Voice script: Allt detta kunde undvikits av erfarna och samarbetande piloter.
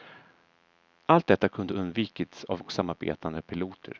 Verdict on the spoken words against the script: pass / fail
fail